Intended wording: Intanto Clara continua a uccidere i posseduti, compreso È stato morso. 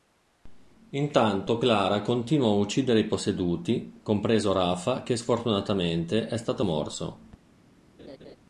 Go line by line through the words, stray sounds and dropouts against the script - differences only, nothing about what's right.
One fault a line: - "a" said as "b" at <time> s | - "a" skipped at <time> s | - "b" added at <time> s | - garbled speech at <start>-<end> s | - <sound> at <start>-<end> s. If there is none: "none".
- "Rafa che sfortunatamente" added at 4.5 s
- laugh at 8.0-8.4 s